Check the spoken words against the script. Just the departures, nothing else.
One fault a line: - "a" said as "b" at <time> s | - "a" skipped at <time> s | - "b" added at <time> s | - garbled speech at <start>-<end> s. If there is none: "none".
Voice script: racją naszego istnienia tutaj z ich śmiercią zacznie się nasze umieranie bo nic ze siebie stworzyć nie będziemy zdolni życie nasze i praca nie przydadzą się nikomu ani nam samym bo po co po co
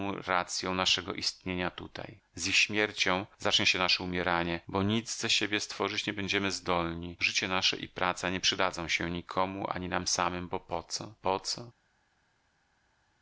none